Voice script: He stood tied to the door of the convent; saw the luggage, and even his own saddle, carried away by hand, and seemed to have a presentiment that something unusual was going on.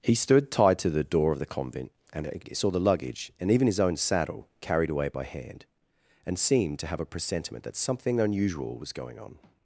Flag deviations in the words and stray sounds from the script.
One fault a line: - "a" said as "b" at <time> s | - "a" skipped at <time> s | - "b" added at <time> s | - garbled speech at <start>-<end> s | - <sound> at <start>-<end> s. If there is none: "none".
- "and" added at 2.1 s